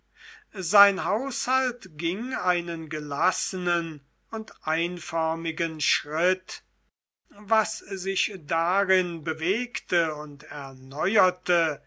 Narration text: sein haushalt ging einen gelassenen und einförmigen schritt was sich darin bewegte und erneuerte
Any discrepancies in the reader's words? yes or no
no